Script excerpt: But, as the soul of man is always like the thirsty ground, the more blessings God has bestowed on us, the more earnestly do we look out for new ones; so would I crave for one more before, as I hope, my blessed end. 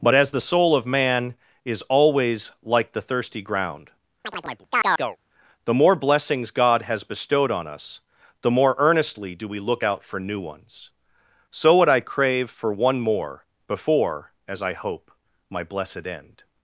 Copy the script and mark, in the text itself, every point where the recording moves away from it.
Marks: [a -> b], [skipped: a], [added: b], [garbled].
But, as the soul of man is always like the thirsty ground, the more blessings God has bestowed on us, the more earnestly do we look out for new ones; so would I crave for one more before, as I hope, my blessed end.